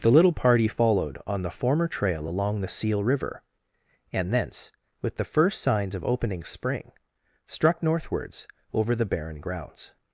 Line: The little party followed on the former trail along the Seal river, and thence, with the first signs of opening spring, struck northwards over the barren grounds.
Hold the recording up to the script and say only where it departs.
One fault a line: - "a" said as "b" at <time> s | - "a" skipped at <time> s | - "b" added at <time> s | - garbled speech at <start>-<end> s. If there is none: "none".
none